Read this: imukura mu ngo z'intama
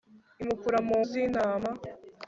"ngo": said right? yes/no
no